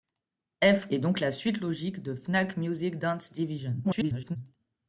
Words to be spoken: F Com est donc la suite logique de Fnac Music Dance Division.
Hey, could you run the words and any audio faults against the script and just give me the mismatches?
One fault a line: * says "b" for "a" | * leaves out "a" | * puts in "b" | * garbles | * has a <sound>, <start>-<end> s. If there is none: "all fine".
* leaves out "Com"
* garbles